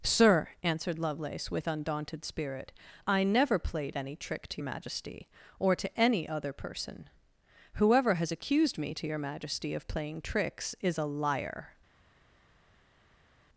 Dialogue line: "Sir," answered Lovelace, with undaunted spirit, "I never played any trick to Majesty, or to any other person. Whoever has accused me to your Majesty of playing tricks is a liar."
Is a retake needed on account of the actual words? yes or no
no